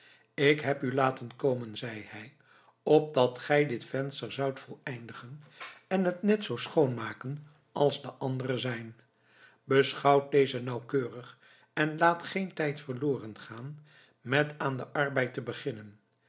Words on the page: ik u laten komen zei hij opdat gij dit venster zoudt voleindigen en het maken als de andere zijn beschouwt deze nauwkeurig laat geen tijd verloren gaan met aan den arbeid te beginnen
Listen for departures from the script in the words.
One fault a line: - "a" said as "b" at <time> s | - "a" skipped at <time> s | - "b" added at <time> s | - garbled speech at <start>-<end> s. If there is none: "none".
- "heb" added at 0.6 s
- "net zoo schoon" added at 6.2 s
- "en" added at 11.7 s